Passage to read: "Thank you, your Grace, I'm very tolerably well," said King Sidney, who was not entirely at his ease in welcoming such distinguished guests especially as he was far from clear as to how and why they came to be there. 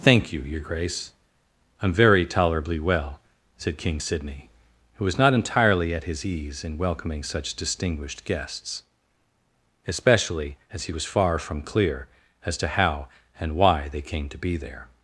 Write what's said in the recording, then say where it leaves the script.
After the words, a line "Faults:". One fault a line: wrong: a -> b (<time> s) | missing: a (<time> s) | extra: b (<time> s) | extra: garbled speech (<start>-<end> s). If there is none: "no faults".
"Thank you, your Grace, I'm very tolerably well," said King Sidney, who was not entirely at his ease in welcoming such distinguished guests especially as he was far from clear as to how and why they came to be there.
Faults:
no faults